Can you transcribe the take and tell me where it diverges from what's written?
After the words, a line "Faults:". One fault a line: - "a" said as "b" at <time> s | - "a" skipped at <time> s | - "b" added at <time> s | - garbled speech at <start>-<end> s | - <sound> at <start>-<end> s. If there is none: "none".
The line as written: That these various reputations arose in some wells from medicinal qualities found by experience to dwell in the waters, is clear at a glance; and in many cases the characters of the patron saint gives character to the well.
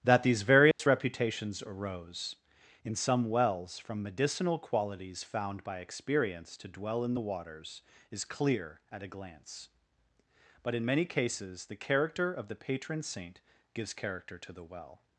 That these various reputations arose in some wells from medicinal qualities found by experience to dwell in the waters, is clear at a glance; but in many cases the character of the patron saint gives character to the well.
Faults:
- dropout at 0.7-0.8 s
- "and" said as "but" at 10.6 s
- "characters" said as "character" at 11.8 s